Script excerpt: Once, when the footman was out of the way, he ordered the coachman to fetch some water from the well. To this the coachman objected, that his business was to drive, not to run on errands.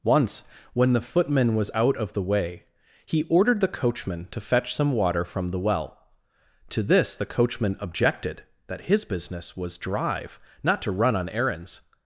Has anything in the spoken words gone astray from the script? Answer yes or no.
yes